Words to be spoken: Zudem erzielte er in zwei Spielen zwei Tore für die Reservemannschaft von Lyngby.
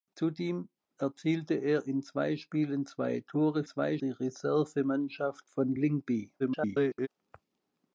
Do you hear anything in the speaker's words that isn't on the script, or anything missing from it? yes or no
yes